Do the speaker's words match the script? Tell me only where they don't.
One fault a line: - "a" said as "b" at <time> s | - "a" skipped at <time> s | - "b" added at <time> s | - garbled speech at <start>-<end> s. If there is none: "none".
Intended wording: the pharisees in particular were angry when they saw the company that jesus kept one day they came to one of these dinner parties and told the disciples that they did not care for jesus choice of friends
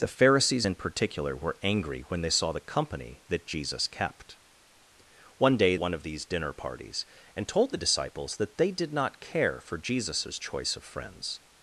- "they came to" skipped at 5.7 s